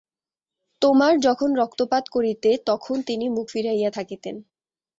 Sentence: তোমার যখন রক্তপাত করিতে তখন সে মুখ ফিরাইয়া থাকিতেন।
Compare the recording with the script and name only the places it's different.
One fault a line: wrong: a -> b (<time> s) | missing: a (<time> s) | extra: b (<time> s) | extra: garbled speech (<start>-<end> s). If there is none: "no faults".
wrong: সে -> তিনি (3.0 s)